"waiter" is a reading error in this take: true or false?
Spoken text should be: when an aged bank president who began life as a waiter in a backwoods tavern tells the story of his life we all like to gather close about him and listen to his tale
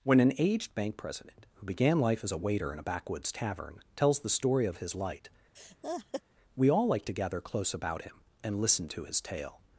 false